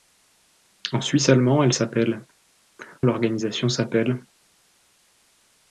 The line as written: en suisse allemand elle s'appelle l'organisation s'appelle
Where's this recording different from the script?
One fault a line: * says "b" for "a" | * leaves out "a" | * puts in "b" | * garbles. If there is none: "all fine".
all fine